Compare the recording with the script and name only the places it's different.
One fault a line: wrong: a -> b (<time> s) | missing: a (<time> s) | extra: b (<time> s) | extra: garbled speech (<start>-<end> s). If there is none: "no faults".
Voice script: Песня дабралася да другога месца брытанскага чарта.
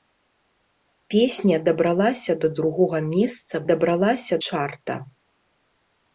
wrong: брытанскага -> дабралася (3.7 s)